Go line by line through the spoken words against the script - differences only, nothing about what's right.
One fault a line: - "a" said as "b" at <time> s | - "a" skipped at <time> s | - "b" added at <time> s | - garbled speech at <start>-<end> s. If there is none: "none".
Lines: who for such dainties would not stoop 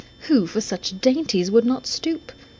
none